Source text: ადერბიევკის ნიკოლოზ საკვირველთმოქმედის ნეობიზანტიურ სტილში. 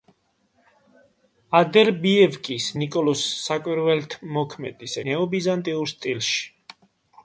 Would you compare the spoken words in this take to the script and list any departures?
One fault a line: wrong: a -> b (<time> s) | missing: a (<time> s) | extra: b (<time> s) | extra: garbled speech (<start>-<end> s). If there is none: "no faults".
no faults